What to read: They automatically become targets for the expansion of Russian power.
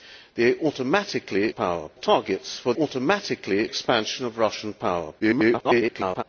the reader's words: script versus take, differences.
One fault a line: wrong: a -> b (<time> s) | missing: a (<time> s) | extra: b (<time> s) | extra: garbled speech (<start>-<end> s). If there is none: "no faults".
wrong: become -> power (1.5 s)
wrong: the -> automatically (2.7 s)
extra: garbled speech (5.2-6.2 s)